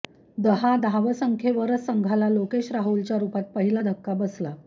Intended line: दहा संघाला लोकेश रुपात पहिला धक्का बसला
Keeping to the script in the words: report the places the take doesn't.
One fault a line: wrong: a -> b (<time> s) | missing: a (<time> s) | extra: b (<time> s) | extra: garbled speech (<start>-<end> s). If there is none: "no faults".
extra: धावसंख्येवरच (0.7 s)
extra: राहुलच्या (2.7 s)